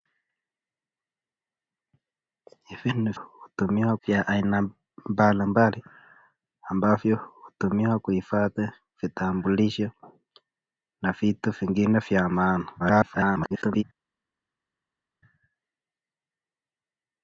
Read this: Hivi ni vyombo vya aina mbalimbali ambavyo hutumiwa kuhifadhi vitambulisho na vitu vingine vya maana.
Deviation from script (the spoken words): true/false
true